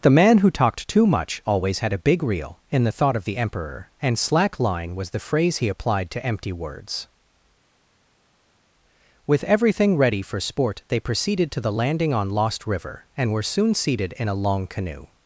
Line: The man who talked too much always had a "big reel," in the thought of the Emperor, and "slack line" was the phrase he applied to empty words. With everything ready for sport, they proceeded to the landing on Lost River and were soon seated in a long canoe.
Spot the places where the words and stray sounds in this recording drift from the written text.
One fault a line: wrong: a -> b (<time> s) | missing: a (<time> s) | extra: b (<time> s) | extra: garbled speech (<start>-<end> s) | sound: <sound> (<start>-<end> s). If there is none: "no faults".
no faults